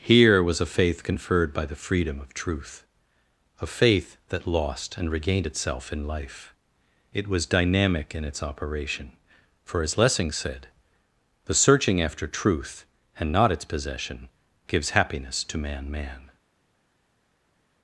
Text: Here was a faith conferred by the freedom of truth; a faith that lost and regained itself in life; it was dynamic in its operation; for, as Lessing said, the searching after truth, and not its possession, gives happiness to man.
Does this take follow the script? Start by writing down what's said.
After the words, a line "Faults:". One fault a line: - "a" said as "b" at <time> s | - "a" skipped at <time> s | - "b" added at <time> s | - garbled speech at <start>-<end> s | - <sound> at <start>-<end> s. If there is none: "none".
Here was a faith conferred by the freedom of truth; a faith that lost and regained itself in life; it was dynamic in its operation; for, as Lessing said, the searching after truth, and not its possession, gives happiness to man man.
Faults:
- "man" added at 15.9 s